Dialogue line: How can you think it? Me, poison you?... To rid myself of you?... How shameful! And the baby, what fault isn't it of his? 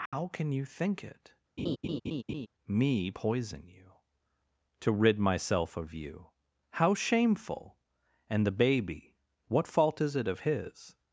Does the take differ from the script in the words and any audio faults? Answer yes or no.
yes